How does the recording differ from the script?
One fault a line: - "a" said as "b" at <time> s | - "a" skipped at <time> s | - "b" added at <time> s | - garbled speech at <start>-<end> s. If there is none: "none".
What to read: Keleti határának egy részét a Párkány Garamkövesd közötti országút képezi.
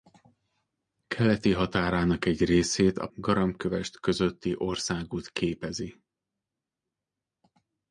- "Párkány" skipped at 3.1 s